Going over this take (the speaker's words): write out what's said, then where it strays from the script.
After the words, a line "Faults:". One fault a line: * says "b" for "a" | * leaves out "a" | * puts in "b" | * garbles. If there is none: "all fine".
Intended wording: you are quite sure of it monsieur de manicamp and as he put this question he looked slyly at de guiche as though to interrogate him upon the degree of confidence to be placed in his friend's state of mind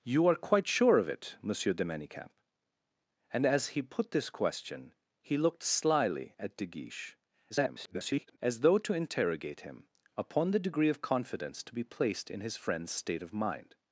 you are quite sure of it monsieur de manicamp and as he put this question he looked slyly at de guiche [garbled] as though to interrogate him upon the degree of confidence to be placed in his friend's state of mind
Faults:
* garbles